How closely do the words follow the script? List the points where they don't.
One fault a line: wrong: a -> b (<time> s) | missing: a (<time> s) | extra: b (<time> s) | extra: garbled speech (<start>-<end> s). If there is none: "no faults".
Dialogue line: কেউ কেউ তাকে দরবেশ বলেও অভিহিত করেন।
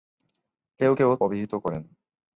missing: তাকে দরবেশ বলেও (1.1 s)